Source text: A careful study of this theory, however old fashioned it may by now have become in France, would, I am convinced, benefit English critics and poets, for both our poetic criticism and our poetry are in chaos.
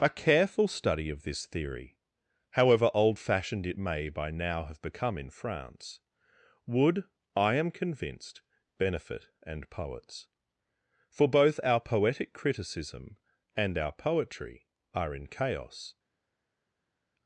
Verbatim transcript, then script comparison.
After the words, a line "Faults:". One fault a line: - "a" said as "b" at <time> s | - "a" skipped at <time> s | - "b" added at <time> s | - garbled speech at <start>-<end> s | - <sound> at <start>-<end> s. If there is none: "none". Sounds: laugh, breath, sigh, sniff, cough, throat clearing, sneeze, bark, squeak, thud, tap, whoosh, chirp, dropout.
A careful study of this theory, however old fashioned it may by now have become in France, would, I am convinced, benefit and poets, for both our poetic criticism and our poetry are in chaos.
Faults:
- "English critics" skipped at 9.3 s